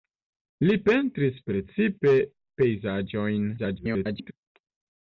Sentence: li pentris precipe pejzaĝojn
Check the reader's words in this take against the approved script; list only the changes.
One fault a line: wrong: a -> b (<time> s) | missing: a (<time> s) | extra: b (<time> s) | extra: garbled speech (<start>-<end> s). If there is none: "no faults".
extra: garbled speech (3.6-4.3 s)